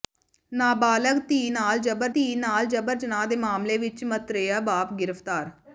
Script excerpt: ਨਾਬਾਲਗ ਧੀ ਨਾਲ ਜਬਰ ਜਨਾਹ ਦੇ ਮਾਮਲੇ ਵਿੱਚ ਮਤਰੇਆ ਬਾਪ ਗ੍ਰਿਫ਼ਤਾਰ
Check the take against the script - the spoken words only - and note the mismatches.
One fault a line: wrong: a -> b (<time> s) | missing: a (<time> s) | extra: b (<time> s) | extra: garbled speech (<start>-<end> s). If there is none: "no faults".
extra: ਧੀ ਨਾਲ ਜਬਰ (2.1 s)